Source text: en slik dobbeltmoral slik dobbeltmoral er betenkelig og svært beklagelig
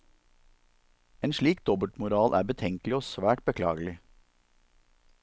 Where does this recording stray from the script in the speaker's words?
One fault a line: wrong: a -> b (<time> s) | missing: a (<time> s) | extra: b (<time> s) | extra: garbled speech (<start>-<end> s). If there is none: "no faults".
missing: slik dobbeltmoral (2.4 s)